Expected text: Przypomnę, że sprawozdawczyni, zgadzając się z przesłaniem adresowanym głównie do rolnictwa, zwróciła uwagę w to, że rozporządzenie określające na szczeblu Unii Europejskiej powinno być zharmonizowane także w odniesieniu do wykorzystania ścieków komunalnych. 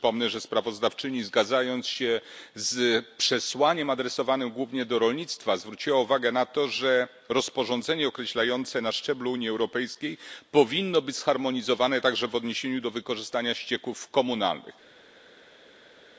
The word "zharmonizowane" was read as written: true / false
true